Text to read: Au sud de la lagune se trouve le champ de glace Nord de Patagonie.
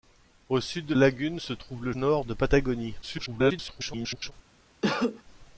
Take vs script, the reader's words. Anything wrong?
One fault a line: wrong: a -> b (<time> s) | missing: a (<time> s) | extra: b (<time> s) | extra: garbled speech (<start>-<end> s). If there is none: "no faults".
missing: la (0.9 s)
missing: champ de glace (1.9 s)
extra: garbled speech (3.0-4.3 s)